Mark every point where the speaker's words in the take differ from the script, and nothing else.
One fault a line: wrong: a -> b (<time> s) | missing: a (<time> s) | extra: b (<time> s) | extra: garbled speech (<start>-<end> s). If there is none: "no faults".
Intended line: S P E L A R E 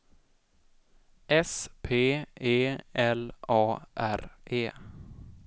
no faults